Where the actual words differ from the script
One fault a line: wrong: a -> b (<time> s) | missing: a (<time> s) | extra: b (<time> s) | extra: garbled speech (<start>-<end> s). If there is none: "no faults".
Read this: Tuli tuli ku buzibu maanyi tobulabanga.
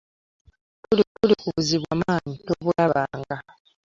no faults